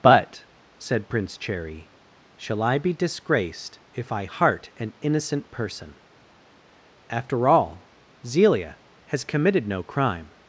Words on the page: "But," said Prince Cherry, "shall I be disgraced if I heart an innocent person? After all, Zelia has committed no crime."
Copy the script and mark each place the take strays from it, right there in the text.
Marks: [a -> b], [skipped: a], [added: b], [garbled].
"But," said Prince Cherry, "shall I be disgraced if I heart an innocent person? After all, Zelia has committed no crime."